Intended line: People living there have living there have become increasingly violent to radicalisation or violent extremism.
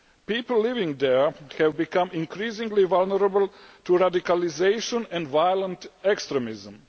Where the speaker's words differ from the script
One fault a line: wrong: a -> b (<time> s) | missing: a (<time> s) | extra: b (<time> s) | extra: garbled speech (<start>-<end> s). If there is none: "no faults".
missing: living there have (1.8 s)
wrong: violent -> vulnerable (2.9 s)
wrong: or -> and (5.1 s)